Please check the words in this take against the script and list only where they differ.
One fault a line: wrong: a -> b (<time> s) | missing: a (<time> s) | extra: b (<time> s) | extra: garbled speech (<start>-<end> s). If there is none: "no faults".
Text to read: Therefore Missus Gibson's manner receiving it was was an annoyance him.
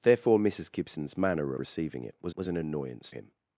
no faults